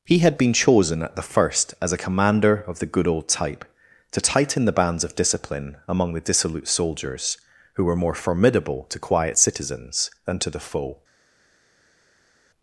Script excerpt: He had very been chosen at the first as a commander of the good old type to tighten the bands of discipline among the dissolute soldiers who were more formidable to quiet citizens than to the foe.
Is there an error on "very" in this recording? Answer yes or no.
yes